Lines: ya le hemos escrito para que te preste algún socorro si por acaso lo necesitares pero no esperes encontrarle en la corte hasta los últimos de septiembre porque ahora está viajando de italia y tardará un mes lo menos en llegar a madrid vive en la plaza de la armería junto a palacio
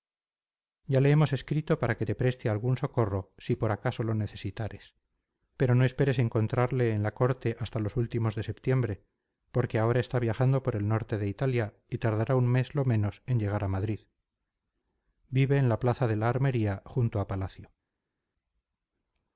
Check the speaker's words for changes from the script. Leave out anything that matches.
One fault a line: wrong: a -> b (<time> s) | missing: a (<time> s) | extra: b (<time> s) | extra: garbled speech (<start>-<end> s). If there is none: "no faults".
extra: por el norte (10.6 s)